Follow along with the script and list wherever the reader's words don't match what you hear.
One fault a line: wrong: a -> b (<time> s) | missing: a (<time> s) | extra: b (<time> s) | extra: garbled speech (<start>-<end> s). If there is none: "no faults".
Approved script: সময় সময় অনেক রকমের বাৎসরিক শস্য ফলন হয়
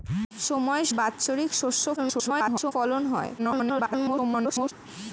missing: সময় অনেক রকমের (0.8 s)
extra: garbled speech (2.0-2.7 s)
extra: garbled speech (3.4-4.7 s)